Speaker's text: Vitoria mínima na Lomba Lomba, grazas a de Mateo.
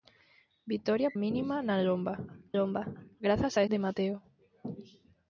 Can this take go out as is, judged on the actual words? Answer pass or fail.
pass